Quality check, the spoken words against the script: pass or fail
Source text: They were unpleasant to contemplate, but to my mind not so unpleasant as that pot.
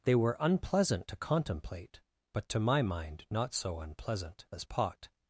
fail